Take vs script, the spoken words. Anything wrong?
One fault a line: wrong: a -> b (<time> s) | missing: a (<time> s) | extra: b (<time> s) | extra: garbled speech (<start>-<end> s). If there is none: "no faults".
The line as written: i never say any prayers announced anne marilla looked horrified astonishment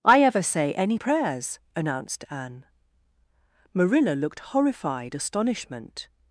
wrong: never -> ever (0.2 s)